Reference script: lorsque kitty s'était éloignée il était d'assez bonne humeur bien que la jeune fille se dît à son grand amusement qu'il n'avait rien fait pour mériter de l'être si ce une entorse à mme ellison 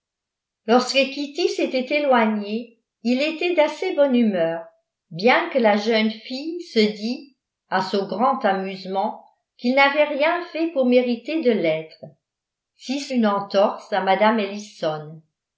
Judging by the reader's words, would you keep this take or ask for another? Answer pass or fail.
pass